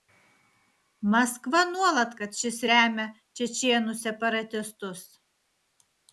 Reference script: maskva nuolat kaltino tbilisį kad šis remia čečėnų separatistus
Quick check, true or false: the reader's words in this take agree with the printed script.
false